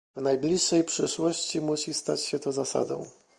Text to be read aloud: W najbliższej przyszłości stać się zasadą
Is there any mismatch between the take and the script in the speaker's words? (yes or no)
yes